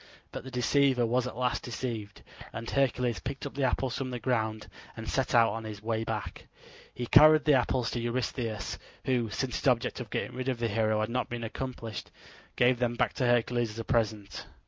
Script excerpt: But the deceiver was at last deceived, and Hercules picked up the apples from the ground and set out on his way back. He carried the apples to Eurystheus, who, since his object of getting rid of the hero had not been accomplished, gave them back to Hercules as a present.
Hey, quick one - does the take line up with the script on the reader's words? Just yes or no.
yes